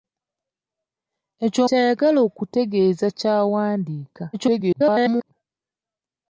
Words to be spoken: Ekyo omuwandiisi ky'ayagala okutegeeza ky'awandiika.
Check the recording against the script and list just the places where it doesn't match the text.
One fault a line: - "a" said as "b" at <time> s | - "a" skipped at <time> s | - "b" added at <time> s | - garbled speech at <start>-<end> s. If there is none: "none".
- "omuwandiisi" skipped at 1.6 s
- garbled speech at 4.3-5.3 s